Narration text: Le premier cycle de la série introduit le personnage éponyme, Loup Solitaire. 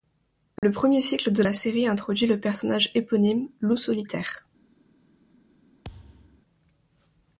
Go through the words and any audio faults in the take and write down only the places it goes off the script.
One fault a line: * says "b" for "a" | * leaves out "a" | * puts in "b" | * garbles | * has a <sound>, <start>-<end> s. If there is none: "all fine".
* has a dropout, 0.6-0.6 s
* has a thud, 5.8-6.4 s